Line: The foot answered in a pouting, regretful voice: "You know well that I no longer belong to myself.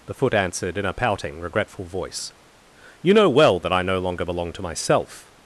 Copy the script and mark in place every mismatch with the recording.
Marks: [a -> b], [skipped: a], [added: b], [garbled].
The foot answered in a pouting, regretful voice: "You know well that I no longer belong to myself.